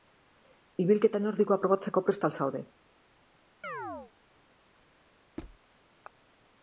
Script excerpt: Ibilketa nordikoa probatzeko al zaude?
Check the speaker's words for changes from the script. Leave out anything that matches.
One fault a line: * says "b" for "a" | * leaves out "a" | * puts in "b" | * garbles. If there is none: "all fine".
* puts in "prest"